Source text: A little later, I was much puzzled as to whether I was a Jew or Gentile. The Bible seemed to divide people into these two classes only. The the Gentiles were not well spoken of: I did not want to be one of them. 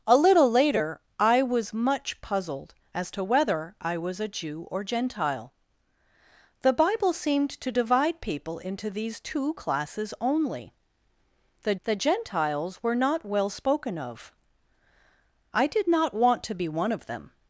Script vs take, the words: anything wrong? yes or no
no